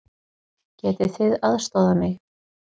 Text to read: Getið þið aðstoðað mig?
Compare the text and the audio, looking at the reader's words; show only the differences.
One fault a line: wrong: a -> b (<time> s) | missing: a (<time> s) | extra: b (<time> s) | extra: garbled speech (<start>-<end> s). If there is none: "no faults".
no faults